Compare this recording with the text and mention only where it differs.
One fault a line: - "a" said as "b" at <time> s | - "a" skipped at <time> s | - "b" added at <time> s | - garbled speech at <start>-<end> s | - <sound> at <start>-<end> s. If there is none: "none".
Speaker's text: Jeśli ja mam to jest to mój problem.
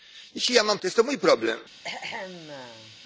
- throat clearing at 1.8-3.0 s